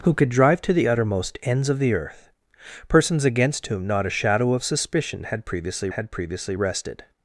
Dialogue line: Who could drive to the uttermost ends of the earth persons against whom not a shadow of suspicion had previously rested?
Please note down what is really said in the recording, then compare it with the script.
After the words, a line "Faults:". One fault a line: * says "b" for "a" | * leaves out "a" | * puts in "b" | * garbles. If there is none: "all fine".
Who could drive to the uttermost ends of the earth persons against whom not a shadow of suspicion had previously had previously rested?
Faults:
* puts in "had previously"